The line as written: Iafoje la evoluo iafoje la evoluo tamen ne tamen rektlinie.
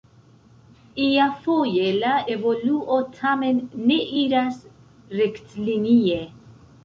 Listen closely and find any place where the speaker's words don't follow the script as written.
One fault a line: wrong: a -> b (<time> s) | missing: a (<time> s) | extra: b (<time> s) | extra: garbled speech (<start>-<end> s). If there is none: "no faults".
missing: iafoje la evoluo (3.0 s)
wrong: tamen -> iras (4.2 s)